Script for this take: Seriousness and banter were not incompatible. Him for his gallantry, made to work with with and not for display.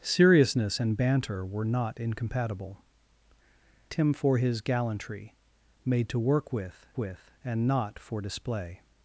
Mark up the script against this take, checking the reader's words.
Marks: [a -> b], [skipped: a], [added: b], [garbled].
Seriousness and banter were not incompatible. Him for his gallantry, made to work with with and not for display.